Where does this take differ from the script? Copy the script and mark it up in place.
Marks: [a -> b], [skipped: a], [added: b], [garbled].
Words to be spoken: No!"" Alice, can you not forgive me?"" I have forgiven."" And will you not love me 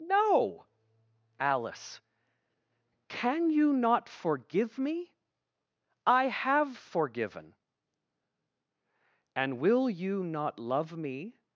No!"" Alice, can you not forgive me?"" I have forgiven."" And will you not love me